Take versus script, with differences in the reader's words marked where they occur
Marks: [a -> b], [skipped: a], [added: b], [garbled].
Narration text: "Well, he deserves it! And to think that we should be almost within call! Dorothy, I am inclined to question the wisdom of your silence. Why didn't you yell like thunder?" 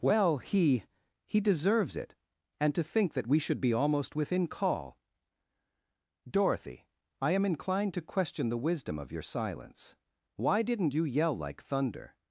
"Well, he [added: he] deserves it! And to think that we should be almost within call! Dorothy, I am inclined to question the wisdom of your silence. Why didn't you yell like thunder?"